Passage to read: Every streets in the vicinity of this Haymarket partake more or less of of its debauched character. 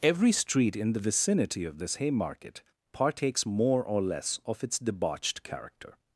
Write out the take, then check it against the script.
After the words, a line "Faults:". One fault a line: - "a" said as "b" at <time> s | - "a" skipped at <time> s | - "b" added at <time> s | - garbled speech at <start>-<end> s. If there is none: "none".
Every street in the vicinity of this Haymarket partakes more or less of its debauched character.
Faults:
- "streets" said as "street" at 0.3 s
- "partake" said as "partakes" at 2.9 s
- "of" skipped at 4.6 s